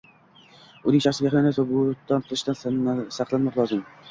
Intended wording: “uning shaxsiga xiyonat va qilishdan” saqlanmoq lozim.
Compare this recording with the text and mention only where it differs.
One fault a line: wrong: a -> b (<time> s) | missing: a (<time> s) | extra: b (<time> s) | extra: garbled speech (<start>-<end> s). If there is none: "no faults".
extra: bo'hton (1.7 s)